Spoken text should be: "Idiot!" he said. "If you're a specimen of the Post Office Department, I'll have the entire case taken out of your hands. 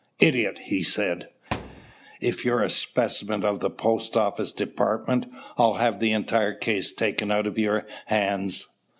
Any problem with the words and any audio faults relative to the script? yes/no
yes